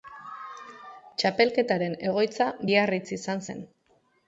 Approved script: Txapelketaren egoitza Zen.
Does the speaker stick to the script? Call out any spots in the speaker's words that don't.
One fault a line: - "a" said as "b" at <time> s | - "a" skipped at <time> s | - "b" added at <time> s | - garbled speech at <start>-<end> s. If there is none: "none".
- "Biarritz izan" added at 2.7 s